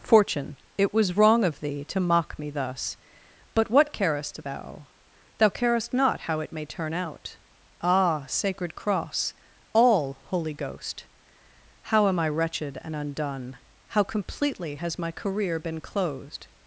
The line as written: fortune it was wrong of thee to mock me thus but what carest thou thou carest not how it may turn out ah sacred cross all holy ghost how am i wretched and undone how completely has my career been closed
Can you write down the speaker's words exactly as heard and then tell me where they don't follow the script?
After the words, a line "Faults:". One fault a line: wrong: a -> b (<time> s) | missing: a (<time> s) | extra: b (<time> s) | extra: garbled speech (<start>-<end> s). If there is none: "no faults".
fortune it was wrong of thee to mock me thus but what carest thou thou carest not how it may turn out ah sacred cross all holy ghost how am i wretched and undone how completely has my career been closed
Faults:
no faults